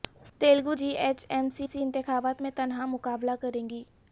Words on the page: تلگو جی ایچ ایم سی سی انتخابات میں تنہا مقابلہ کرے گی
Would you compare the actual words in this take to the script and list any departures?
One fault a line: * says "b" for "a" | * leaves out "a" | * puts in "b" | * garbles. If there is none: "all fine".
all fine